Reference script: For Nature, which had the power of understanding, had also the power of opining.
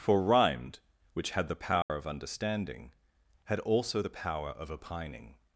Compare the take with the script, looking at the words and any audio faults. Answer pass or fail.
fail